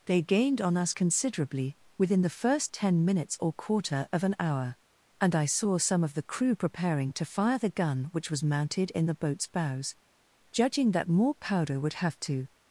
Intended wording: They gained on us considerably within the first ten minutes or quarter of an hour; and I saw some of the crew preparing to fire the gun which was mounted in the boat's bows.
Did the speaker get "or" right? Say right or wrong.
right